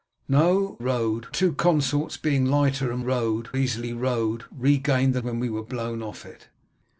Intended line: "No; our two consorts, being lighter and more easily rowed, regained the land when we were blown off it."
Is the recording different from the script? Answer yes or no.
yes